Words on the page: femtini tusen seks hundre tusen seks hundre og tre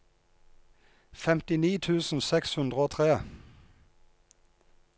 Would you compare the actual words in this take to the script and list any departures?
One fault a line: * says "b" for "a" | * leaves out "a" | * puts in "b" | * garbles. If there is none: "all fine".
* leaves out "tusen seks hundre"